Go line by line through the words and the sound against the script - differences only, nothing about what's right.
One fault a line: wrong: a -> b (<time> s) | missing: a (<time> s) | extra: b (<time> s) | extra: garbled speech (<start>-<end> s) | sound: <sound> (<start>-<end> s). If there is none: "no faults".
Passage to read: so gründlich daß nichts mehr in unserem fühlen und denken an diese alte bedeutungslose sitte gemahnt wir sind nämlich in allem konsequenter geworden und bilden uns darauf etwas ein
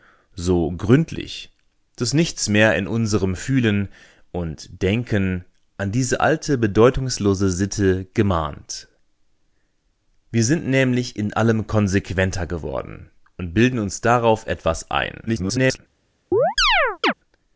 extra: garbled speech (15.3-15.8 s)
sound: chirp (16.3-17.1 s)